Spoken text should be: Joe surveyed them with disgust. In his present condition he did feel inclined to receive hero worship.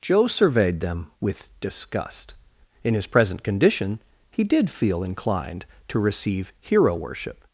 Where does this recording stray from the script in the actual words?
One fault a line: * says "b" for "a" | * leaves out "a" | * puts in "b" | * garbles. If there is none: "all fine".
all fine